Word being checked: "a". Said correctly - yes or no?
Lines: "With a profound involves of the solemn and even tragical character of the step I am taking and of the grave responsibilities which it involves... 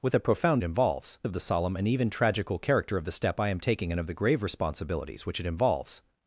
yes